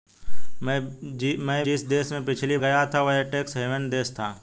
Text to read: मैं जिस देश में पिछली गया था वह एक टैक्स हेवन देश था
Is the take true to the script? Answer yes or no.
yes